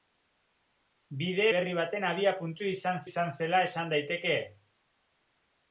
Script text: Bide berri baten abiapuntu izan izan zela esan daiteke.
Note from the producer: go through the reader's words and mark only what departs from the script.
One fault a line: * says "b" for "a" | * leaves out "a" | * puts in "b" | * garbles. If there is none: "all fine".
all fine